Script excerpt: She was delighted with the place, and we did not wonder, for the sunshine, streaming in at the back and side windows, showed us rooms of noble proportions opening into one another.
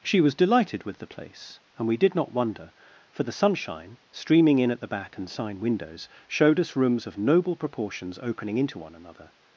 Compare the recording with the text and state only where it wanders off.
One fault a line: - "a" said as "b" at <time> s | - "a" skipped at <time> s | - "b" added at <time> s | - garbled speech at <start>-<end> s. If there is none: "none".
- "side" said as "sign" at 5.3 s